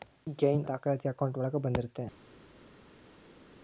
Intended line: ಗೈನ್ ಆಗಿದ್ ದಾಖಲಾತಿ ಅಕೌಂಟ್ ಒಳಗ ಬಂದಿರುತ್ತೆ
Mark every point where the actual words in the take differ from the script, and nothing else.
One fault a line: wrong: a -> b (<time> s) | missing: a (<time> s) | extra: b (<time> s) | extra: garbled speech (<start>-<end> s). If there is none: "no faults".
missing: ಆಗಿದ್ (0.6 s)